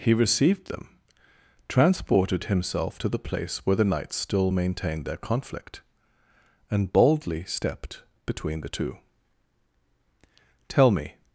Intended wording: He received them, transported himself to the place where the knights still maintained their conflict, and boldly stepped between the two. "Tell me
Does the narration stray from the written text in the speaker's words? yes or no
no